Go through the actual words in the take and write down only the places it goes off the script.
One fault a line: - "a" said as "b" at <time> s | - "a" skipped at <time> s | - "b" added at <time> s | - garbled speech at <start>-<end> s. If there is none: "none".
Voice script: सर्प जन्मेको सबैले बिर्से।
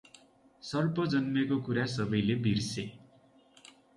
- "कुरा" added at 1.7 s